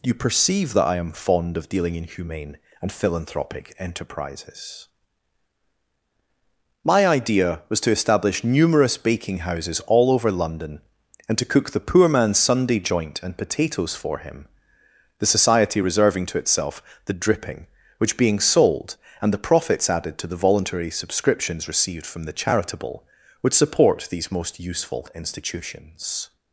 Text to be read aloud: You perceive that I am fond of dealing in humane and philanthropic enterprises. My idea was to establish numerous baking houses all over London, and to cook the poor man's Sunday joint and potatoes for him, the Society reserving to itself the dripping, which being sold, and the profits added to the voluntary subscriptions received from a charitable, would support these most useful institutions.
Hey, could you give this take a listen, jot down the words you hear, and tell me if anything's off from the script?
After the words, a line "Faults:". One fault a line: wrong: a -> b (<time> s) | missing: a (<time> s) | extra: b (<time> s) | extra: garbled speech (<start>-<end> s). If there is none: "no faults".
You perceive that I am fond of dealing in humane and philanthropic enterprises. My idea was to establish numerous baking houses all over London, and to cook the poor man's Sunday joint and potatoes for him, the Society reserving to itself the dripping, which being sold, and the profits added to the voluntary subscriptions received from the charitable, would support these most useful institutions.
Faults:
wrong: a -> the (22.2 s)